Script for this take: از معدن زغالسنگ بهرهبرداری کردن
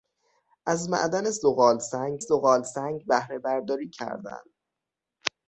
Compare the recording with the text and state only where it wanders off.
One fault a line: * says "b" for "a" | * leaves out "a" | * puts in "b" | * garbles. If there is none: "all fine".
* puts in "زغالسنگ"